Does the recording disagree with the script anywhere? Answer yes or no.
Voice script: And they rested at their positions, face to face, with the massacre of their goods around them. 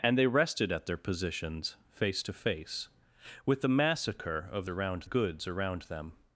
yes